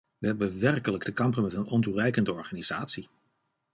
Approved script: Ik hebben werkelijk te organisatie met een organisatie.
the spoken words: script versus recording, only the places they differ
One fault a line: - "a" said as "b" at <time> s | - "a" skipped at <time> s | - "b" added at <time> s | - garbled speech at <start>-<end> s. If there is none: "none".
- "Ik" said as "We" at 0.2 s
- "organisatie" said as "kampen" at 1.1 s
- "ontoereikende" added at 1.7 s